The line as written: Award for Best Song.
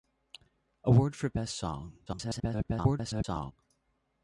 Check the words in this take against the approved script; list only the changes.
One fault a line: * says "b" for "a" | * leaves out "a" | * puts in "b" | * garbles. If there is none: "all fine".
* garbles